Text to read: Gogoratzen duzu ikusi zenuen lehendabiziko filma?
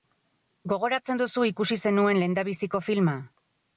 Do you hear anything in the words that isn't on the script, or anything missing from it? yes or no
no